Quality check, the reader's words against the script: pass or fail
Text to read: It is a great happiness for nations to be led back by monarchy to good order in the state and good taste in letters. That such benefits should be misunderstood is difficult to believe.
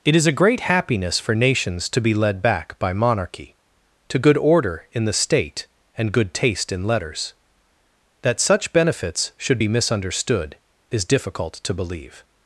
pass